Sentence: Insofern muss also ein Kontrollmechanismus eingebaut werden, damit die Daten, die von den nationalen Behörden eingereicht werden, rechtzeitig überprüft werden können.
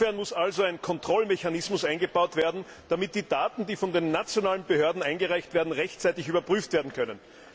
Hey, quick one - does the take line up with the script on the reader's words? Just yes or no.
yes